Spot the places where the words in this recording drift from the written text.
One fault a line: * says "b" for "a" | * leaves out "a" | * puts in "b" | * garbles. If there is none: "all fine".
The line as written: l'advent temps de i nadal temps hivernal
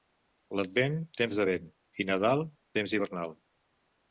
* puts in "vent"